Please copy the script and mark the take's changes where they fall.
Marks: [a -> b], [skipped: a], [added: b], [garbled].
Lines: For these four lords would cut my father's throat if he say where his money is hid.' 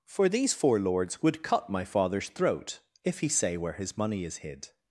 For these four lords would cut my father's throat if he say where his money is hid.'